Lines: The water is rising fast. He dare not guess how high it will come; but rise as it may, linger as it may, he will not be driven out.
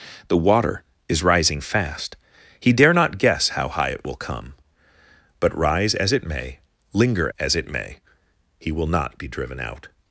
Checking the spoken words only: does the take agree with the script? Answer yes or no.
yes